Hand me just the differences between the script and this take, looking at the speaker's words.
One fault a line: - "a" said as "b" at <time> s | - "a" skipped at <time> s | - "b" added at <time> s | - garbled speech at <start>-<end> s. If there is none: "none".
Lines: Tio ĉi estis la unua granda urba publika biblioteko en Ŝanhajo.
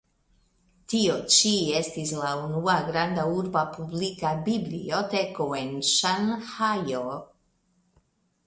none